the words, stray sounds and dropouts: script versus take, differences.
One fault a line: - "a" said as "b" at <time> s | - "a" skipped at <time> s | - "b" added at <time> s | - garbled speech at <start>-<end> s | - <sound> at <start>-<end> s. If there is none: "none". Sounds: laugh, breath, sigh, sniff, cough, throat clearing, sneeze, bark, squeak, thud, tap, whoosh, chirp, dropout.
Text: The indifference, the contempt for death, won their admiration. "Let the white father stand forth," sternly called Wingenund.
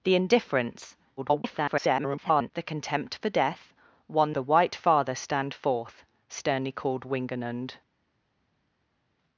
- garbled speech at 1.2-2.5 s
- "their admiration Let" skipped at 4.3 s